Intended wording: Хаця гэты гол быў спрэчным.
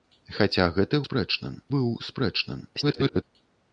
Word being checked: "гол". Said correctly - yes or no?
no